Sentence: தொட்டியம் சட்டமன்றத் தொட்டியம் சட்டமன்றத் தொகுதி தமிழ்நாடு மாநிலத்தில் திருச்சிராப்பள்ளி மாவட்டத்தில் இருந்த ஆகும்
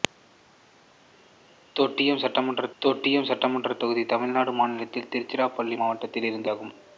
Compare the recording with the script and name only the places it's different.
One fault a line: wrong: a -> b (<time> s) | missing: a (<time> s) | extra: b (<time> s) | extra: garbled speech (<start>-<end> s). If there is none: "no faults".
no faults